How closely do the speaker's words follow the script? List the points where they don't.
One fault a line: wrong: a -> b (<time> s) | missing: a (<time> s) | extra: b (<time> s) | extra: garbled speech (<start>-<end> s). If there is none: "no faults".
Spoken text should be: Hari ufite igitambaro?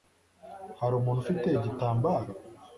extra: umuntu (0.9 s)